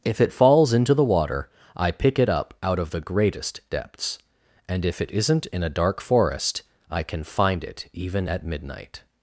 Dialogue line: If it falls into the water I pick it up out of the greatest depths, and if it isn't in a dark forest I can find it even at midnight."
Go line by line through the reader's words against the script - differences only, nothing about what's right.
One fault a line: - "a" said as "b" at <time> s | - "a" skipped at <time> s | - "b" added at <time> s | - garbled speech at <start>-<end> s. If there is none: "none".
none